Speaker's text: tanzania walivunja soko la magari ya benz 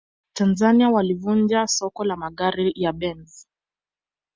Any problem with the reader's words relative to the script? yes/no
no